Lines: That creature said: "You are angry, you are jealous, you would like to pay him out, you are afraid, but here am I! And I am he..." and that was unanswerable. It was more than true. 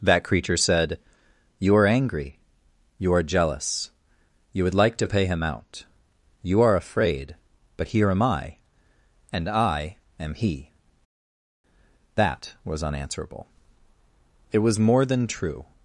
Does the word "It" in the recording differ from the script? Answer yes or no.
no